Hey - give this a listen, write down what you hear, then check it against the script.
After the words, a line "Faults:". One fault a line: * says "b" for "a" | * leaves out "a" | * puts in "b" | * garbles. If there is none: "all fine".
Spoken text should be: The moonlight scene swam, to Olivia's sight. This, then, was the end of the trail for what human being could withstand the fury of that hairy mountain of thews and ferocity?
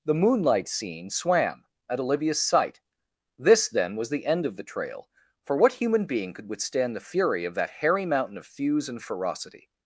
The moonlight scene swam, at Olivia's sight. This, then, was the end of the trail for what human being could withstand the fury of that hairy mountain of thews and ferocity?
Faults:
* says "at" for "to"